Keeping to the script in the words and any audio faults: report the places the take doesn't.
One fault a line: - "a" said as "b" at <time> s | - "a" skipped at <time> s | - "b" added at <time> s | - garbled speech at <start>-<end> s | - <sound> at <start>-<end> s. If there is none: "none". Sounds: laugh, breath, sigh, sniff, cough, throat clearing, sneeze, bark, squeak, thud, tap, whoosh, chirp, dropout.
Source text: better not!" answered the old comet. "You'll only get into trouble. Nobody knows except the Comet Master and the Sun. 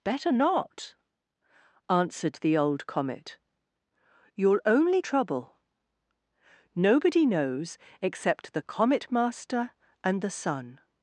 - "get into" skipped at 5.0 s